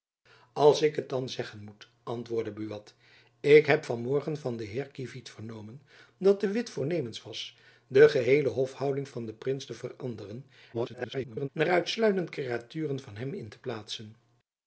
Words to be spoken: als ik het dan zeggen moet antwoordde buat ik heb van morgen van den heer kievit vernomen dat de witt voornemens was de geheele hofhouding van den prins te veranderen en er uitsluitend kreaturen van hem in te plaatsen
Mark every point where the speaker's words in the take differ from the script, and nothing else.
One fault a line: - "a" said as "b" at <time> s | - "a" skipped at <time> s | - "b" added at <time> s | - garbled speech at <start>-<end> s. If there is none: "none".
- garbled speech at 10.7-11.5 s